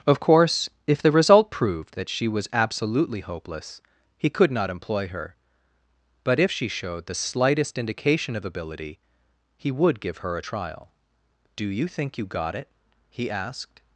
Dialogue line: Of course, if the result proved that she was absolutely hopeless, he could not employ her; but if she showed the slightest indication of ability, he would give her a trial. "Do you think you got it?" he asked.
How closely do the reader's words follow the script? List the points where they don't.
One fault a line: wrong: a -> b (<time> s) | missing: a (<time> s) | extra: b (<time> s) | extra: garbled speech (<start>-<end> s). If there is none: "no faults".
no faults